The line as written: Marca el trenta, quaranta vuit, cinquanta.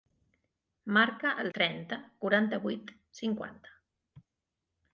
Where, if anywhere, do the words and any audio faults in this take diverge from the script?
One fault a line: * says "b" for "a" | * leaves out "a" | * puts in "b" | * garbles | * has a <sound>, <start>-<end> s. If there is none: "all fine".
all fine